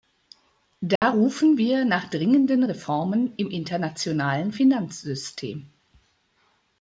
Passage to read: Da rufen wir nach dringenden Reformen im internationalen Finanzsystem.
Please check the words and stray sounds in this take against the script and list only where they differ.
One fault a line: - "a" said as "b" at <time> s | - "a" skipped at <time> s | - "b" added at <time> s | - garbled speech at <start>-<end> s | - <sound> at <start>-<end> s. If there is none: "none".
- dropout at 1.0-1.0 s